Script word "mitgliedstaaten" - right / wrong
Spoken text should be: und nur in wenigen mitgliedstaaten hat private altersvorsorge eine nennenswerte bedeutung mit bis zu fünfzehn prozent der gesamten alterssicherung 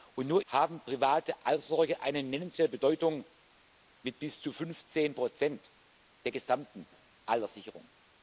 wrong